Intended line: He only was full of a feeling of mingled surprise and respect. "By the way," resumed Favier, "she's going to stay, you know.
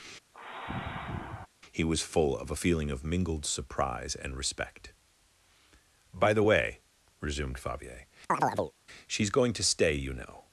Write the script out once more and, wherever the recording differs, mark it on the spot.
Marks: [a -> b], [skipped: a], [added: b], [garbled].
He [skipped: only] was full of a feeling of mingled surprise and respect. "By the way," resumed Favier, "she's going to stay, you know.